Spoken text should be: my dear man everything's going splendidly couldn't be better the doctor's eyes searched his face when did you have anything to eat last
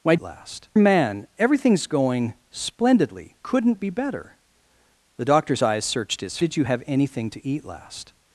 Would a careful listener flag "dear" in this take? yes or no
yes